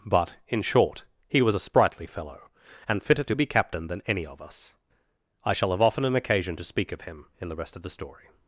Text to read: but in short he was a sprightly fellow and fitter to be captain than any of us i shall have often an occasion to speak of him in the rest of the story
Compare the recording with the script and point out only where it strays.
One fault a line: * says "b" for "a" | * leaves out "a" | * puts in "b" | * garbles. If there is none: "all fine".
all fine